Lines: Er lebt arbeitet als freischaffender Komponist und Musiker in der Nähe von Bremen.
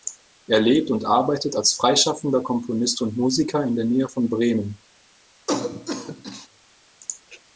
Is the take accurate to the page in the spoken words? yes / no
no